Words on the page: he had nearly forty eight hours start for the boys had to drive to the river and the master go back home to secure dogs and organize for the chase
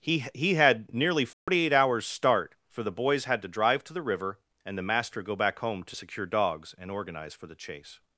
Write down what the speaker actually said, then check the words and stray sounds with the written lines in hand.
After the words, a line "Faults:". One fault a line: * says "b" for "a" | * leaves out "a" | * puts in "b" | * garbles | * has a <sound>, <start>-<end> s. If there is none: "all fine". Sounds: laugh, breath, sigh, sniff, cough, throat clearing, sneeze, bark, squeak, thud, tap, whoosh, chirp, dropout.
he he had nearly forty eight hours start for the boys had to drive to the river and the master go back home to secure dogs and organize for the chase
Faults:
* puts in "he"
* has a dropout, 1.3-1.5 s